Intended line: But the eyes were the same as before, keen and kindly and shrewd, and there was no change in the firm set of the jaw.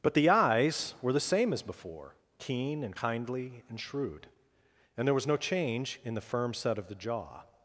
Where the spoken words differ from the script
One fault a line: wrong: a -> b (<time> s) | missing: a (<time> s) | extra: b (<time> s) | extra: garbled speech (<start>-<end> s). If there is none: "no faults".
no faults